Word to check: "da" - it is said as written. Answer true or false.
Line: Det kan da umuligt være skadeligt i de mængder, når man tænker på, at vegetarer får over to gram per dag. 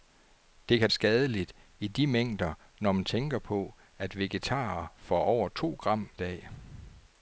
false